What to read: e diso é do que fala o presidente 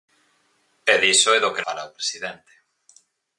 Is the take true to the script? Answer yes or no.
yes